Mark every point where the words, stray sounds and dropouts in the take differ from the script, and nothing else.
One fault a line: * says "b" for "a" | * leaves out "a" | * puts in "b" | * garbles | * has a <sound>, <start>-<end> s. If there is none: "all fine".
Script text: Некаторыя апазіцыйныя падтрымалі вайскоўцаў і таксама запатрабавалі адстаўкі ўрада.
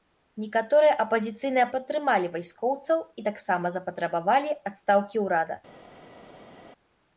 all fine